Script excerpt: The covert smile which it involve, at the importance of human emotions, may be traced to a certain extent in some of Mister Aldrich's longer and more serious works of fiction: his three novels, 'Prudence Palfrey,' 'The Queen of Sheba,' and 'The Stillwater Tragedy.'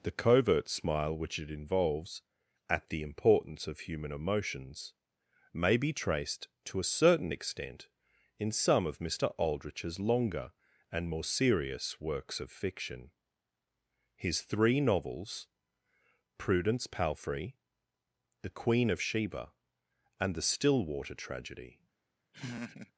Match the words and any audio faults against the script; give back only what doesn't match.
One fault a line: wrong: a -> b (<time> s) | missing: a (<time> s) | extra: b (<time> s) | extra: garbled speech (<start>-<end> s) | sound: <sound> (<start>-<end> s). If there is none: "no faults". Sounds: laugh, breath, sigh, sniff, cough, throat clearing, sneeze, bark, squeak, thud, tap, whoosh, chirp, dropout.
wrong: involve -> involves (1.5 s)
sound: laugh (22.3-22.9 s)